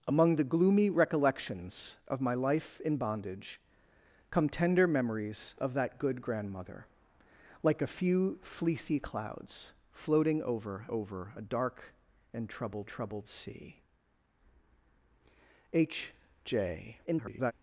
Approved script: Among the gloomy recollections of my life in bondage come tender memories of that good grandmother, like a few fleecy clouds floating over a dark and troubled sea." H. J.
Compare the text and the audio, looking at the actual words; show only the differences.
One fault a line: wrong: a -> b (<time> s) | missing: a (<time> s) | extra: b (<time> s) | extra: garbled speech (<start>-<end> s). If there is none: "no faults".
extra: over (10.9 s)
extra: troubled (12.9 s)
extra: garbled speech (17.1-17.5 s)